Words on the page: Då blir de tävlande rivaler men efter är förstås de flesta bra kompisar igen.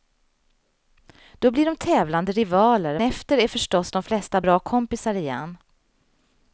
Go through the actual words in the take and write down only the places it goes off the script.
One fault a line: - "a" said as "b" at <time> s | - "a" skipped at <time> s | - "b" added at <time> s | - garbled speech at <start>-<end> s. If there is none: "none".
- "men" skipped at 3.0 s